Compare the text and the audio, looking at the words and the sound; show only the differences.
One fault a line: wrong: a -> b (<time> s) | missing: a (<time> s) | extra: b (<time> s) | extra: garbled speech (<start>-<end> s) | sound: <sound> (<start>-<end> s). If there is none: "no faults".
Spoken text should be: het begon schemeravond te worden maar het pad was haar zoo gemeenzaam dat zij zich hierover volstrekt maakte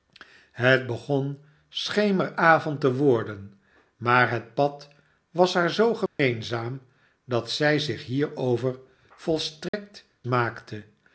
sound: dropout (6.1-6.2 s)
sound: dropout (9.7-9.7 s)